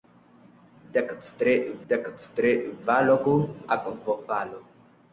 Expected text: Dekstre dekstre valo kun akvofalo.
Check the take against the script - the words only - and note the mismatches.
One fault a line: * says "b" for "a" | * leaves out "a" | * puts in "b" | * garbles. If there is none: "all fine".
all fine